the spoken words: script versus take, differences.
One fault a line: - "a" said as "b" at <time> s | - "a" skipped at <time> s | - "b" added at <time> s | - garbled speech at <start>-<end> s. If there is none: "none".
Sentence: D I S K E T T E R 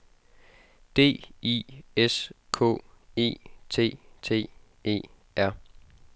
none